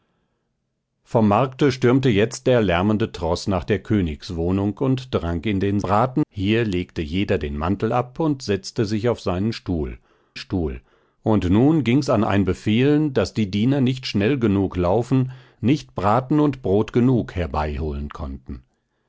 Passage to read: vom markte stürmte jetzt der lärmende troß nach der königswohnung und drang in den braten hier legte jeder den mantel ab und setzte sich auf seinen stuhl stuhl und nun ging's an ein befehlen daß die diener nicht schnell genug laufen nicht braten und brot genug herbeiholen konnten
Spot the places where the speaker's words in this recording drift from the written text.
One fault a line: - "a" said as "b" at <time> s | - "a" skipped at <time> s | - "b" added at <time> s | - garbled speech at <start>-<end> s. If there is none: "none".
none